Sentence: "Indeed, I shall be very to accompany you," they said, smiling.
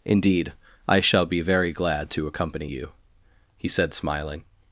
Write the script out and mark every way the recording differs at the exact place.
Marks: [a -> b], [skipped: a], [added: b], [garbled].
"Indeed, I shall be very [added: glad] to accompany you," [they -> he] said, smiling.